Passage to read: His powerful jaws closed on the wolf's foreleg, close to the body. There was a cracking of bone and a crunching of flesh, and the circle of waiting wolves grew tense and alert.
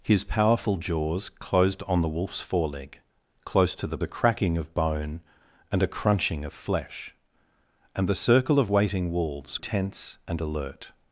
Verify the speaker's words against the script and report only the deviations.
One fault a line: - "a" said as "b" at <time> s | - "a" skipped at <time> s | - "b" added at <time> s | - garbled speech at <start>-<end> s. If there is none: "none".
- "body There was" skipped at 4.0 s
- "grew" skipped at 9.6 s